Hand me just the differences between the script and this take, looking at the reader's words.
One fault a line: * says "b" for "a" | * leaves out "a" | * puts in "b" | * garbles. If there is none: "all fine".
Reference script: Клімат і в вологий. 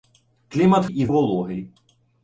all fine